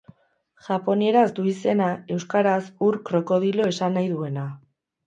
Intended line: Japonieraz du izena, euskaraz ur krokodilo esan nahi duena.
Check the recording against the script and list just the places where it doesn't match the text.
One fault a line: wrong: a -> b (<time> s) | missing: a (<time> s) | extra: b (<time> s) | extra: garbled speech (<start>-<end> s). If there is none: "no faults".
no faults